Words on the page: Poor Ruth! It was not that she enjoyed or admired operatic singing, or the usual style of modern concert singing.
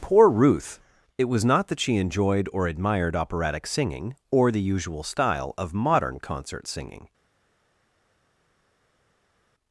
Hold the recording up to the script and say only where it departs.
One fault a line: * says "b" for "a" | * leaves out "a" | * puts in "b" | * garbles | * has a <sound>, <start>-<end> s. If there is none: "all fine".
all fine